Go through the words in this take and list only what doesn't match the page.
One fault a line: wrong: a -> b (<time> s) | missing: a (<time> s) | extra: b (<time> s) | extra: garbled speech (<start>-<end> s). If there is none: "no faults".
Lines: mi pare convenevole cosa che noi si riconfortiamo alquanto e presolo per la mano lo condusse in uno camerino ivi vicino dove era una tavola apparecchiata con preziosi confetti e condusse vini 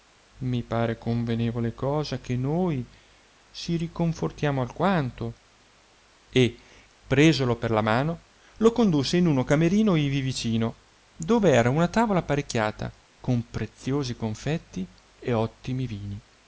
wrong: condusse -> ottimi (15.3 s)